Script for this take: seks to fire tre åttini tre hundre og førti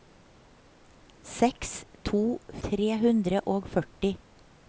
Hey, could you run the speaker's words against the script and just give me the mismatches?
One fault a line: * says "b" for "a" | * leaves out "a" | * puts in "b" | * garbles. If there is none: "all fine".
* leaves out "fire tre åttini"